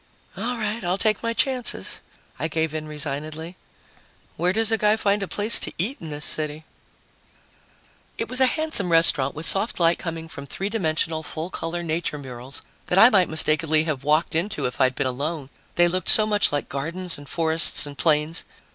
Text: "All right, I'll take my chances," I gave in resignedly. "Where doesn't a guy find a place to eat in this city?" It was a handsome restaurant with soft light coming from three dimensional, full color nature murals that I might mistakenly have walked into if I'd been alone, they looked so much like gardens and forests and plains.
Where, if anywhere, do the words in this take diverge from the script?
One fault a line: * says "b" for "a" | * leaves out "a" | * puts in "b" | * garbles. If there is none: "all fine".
* says "does" for "doesn't"